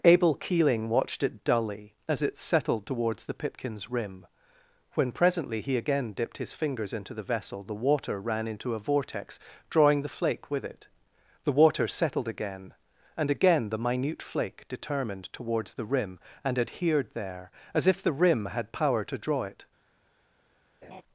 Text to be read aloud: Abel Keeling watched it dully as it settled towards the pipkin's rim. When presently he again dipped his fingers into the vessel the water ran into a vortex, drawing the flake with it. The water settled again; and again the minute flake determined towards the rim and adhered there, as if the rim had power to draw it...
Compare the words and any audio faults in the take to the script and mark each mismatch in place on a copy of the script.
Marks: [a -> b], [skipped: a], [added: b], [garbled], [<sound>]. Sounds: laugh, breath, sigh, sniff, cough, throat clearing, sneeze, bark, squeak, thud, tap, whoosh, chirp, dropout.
Abel Keeling watched it dully as it settled towards the pipkin's rim. When presently he again dipped his fingers into the vessel the water ran into a vortex, drawing the flake with it. The water settled again; and again the minute flake determined towards the rim and adhered there, as if the rim had power to draw it... [laugh]